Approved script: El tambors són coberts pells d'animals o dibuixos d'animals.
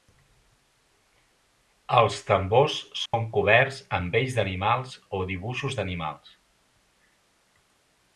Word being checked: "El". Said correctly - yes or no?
no